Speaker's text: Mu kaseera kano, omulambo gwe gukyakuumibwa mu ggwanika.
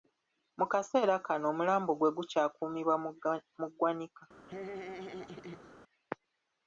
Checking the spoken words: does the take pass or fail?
pass